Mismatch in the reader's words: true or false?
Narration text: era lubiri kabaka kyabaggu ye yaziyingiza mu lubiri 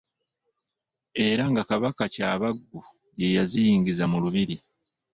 true